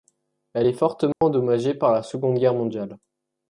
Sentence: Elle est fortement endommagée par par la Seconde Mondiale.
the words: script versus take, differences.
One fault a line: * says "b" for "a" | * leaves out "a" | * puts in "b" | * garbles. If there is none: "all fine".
* leaves out "par"
* puts in "Guerre"